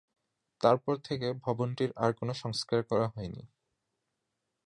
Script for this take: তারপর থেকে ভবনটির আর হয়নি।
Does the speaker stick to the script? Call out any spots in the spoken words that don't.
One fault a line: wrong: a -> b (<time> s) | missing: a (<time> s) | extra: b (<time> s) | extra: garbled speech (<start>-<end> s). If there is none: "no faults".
extra: কোন সংস্কার করা (2.1 s)